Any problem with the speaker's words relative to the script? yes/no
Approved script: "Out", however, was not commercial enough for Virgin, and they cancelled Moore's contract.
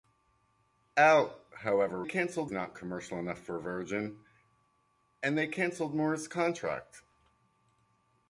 yes